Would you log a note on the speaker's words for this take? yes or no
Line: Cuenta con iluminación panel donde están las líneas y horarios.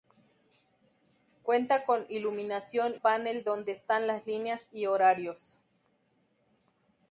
no